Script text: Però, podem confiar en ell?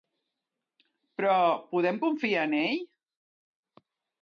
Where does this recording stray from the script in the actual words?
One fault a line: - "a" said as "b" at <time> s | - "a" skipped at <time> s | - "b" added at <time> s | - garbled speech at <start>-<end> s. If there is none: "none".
none